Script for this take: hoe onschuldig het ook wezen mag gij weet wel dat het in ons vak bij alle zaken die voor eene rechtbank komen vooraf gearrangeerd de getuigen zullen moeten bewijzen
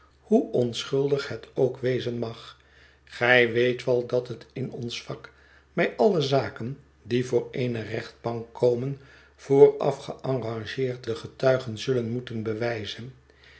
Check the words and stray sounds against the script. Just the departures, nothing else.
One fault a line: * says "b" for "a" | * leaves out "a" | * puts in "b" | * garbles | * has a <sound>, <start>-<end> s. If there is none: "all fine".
all fine